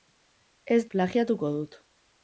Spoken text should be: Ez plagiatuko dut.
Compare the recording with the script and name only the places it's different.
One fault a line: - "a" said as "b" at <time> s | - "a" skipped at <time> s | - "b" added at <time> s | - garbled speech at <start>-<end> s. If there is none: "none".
none